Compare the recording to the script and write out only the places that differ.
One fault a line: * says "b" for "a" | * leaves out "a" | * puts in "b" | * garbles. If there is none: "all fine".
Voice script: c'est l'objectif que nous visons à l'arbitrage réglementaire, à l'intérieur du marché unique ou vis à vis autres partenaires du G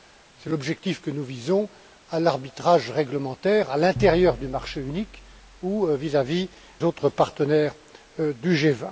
all fine